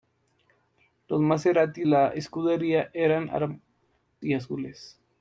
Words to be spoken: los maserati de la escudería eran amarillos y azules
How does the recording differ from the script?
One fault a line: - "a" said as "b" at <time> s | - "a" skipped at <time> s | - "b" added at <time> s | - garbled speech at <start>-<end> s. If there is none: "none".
- "de" skipped at 1.9 s
- "amarillos" skipped at 3.6 s